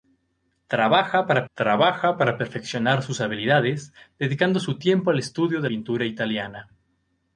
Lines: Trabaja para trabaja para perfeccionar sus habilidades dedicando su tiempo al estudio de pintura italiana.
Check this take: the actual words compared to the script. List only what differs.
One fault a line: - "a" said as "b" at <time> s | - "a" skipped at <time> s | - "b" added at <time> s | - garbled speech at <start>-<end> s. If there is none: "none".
none